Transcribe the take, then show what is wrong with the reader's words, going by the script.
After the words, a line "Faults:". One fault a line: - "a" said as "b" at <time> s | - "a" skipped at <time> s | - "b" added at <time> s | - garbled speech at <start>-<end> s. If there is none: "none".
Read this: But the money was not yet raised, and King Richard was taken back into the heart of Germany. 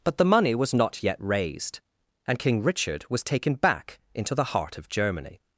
But the money was not yet raised, and King Richard was taken back into the heart of Germany.
Faults:
none